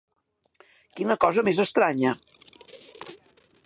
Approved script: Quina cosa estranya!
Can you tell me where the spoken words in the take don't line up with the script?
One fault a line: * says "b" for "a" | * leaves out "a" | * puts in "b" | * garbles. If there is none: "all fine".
* puts in "més"